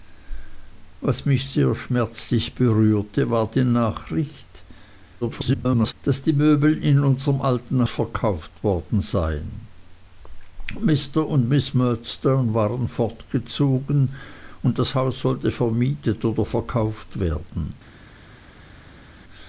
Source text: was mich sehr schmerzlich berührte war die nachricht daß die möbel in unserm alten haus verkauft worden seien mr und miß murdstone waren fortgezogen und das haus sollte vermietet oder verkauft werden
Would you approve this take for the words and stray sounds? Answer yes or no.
no